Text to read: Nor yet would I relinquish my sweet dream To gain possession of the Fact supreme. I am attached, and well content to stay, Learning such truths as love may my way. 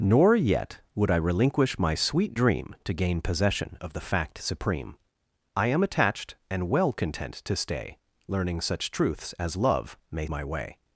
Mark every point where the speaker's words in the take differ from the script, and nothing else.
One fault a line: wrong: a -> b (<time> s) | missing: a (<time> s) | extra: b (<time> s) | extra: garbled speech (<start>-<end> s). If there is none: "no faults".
no faults